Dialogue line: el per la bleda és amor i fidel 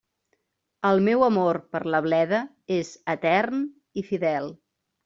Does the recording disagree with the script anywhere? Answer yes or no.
yes